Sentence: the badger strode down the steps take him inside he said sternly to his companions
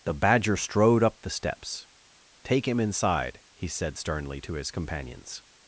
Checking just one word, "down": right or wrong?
wrong